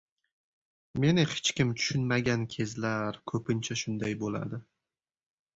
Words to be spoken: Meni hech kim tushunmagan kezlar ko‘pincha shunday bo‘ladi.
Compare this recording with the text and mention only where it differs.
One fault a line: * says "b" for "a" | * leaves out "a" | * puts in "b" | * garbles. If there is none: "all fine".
all fine